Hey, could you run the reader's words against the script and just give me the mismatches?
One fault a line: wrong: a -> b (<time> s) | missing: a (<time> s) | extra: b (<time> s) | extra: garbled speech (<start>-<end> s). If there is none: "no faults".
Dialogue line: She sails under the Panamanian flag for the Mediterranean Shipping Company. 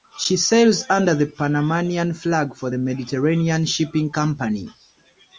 no faults